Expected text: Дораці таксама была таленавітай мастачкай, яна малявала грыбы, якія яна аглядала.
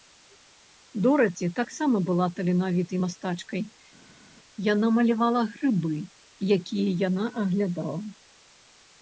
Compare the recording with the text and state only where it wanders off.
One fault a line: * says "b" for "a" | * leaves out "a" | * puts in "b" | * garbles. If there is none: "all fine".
all fine